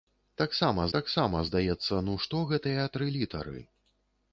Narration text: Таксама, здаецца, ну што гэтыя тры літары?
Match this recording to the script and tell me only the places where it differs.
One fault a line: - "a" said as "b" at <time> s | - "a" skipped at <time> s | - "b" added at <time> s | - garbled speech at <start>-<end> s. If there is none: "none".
- "таксама" added at 1.0 s